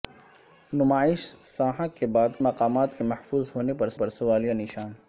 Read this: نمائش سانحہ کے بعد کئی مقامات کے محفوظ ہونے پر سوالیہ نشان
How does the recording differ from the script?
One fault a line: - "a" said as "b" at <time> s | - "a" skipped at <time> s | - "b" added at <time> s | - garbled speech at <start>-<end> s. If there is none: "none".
- "کئی" skipped at 2.4 s
- "پر" added at 3.9 s